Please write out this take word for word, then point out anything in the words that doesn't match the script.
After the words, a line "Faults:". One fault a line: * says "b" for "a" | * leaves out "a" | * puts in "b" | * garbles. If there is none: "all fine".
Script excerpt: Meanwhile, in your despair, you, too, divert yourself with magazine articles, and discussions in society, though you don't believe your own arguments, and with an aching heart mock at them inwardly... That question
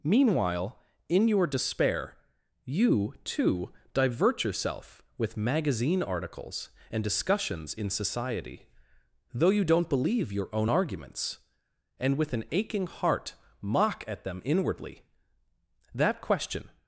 Meanwhile, in your despair, you, too, divert yourself with magazine articles, and discussions in society, though you don't believe your own arguments, and with an aching heart mock at them inwardly... That question
Faults:
all fine